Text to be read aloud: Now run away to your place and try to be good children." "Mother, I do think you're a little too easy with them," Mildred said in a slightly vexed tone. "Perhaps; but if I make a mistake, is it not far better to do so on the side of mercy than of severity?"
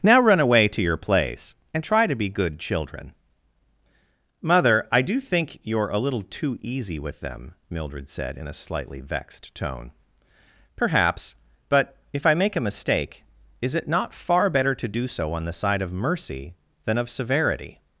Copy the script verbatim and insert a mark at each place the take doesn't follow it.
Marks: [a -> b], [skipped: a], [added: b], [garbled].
Now run away to your place and try to be good children." "Mother, I do think you're a little too easy with them," Mildred said in a slightly vexed tone. "Perhaps; but if I make a mistake, is it not far better to do so on the side of mercy than of severity?"